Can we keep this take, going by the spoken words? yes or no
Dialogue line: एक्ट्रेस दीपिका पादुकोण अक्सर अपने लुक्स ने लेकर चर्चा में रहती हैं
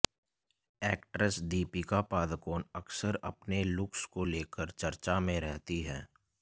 no